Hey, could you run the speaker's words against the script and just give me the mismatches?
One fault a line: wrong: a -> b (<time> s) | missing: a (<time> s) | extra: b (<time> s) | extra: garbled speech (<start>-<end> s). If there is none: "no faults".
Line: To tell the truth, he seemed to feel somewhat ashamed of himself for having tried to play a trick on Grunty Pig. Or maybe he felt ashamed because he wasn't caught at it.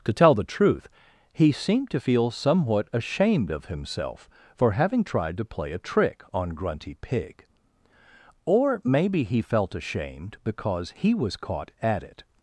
wrong: wasn't -> was (11.1 s)